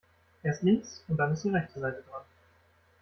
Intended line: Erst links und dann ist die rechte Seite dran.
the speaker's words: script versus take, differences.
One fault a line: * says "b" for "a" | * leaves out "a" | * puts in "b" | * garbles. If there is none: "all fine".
all fine